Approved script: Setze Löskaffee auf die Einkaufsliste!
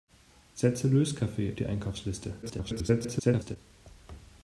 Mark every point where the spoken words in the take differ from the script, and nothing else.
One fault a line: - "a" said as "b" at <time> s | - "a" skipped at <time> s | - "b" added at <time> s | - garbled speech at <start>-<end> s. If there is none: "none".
- "auf" skipped at 1.5 s
- garbled speech at 2.4-3.6 s